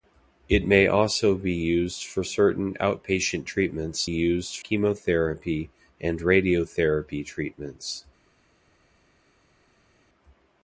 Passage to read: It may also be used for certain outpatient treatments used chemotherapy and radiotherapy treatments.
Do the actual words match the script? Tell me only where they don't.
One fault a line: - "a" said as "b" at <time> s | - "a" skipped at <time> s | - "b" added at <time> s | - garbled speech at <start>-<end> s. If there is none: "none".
none